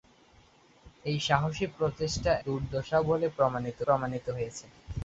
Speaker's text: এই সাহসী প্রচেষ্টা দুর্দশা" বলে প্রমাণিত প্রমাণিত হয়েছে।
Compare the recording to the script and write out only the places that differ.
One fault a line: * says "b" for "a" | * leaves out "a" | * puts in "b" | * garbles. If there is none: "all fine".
all fine